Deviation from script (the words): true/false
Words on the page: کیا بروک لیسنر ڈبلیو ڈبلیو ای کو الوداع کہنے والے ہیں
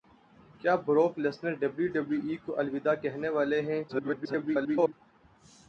true